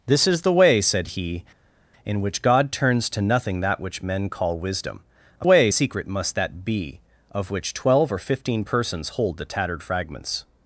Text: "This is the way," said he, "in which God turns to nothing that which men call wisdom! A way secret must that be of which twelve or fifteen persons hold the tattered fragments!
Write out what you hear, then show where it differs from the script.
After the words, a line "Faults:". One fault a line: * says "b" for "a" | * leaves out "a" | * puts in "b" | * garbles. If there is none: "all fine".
"This is the way," said he, "in which God turns to nothing that which men call wisdom! A way secret must that be of which twelve or fifteen persons hold the tattered fragments!
Faults:
all fine